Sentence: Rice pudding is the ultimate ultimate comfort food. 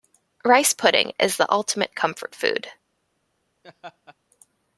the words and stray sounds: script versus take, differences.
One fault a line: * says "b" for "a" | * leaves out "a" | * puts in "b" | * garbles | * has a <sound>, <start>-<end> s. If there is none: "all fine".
* leaves out "ultimate"
* has a laugh, 3.6-4.2 s